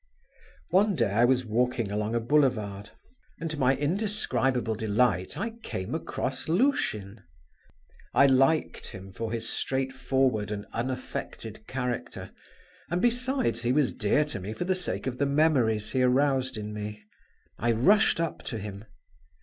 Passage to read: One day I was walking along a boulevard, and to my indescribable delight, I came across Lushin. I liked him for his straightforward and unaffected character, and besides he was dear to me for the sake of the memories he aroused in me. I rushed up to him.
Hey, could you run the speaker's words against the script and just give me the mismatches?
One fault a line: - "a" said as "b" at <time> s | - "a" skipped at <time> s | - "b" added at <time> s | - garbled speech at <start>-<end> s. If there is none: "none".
none